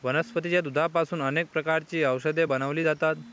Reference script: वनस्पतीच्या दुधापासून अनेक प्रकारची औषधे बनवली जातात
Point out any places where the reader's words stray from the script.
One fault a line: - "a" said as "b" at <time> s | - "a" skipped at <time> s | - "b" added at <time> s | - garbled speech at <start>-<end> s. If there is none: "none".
none